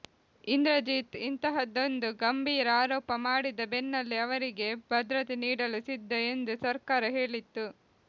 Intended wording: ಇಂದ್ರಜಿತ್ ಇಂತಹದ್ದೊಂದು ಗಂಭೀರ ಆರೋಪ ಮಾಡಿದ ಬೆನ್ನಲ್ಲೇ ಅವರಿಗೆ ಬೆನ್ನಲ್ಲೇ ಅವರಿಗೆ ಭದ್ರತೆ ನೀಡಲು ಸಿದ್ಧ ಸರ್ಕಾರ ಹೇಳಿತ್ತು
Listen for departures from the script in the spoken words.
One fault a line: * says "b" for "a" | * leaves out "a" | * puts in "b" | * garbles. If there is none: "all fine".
* leaves out "ಬೆನ್ನಲ್ಲೇ ಅವರಿಗೆ"
* puts in "ಎಂದು"